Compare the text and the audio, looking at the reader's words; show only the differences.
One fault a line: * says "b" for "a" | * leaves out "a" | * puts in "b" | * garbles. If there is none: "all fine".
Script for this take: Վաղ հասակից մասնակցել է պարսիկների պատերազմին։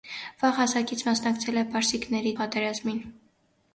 all fine